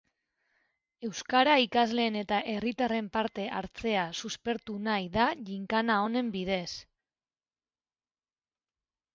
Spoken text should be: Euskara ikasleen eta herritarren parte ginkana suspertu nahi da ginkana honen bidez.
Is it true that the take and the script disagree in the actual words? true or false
true